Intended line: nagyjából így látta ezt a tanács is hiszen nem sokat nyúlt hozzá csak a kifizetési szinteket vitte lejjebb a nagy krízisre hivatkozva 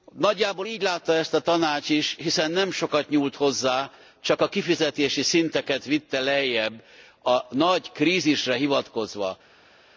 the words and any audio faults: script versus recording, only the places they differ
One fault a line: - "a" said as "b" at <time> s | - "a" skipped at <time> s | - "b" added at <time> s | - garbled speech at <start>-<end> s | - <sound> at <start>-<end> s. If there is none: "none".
none